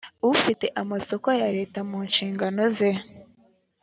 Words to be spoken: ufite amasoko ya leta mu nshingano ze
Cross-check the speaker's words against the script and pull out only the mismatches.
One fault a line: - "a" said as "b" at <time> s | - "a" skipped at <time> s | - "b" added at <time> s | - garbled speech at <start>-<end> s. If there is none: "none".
none